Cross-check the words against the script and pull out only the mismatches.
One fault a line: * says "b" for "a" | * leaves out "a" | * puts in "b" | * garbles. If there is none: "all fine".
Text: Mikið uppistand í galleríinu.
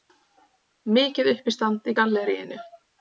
all fine